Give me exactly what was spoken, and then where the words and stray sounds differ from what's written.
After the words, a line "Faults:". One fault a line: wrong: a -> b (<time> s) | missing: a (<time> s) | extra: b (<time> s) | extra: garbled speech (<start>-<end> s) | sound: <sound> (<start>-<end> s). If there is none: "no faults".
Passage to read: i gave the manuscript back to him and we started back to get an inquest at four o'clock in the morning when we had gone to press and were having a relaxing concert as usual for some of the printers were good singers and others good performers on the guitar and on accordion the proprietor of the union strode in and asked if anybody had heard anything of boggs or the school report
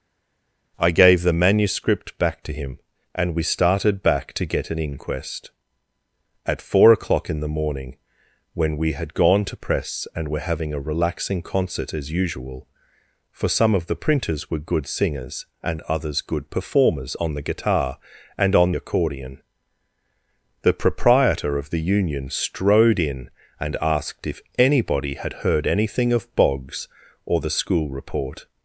i gave the manuscript back to him and we started back to get an inquest at four o'clock in the morning when we had gone to press and were having a relaxing concert as usual for some of the printers were good singers and others good performers on the guitar and on accordion the proprietor of the union strode in and asked if anybody had heard anything of boggs or the school report
Faults:
no faults